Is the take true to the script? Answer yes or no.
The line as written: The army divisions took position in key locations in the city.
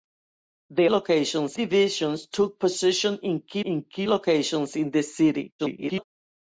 no